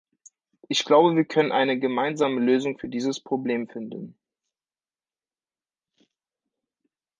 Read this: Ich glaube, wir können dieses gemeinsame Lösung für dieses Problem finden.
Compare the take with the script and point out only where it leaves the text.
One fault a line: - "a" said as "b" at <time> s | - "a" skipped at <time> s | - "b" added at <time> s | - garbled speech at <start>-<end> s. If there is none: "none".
- "dieses" said as "eine" at 1.5 s